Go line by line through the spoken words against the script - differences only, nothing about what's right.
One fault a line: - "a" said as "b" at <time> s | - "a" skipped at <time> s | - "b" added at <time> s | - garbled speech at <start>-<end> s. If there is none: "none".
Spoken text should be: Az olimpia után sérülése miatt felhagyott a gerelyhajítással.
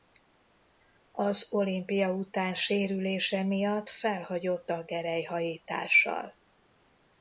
none